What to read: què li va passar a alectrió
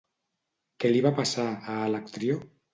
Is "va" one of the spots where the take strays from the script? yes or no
no